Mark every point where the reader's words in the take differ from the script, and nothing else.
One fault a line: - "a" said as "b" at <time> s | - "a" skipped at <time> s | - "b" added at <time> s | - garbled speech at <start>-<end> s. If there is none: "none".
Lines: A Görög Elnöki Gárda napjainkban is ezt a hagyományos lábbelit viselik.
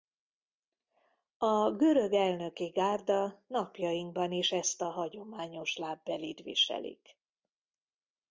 none